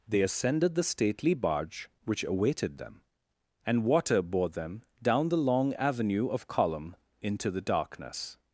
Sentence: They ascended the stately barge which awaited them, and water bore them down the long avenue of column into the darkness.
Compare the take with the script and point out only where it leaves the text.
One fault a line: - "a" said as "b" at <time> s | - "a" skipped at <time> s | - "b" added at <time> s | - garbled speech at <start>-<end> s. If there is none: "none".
none